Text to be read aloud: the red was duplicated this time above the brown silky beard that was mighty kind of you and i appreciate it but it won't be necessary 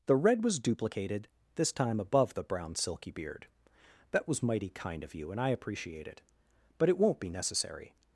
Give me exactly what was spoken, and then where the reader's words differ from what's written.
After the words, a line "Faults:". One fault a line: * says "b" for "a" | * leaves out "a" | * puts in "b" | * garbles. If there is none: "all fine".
the red was duplicated this time above the brown silky beard that was mighty kind of you and i appreciate it but it won't be necessary
Faults:
all fine